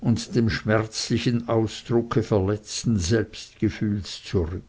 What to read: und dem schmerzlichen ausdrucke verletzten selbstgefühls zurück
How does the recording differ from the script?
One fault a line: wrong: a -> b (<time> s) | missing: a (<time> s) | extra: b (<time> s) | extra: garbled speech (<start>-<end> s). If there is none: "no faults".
no faults